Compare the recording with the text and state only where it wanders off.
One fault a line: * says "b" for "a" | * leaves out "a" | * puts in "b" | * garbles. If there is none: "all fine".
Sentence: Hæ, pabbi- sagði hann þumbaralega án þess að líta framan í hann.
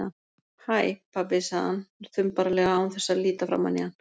all fine